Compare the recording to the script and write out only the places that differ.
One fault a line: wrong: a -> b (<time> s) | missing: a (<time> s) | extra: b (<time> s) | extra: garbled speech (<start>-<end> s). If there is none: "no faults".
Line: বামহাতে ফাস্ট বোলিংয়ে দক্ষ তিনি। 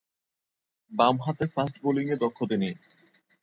no faults